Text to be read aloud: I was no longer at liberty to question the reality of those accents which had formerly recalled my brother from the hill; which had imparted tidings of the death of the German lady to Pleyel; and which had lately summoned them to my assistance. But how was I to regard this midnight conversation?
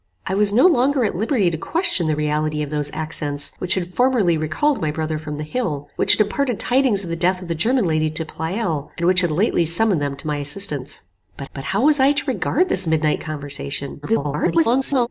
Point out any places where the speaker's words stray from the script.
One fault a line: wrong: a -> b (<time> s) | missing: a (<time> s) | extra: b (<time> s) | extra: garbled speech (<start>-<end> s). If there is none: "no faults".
extra: but (11.5 s)
extra: garbled speech (14.0-15.1 s)